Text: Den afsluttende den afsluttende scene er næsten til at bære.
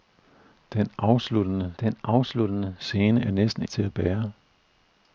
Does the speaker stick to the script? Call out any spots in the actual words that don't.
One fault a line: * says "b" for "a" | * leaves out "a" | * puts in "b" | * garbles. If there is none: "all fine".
all fine